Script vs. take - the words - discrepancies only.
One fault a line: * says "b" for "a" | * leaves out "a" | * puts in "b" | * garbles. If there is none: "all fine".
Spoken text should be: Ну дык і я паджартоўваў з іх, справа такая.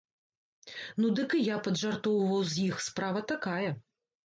all fine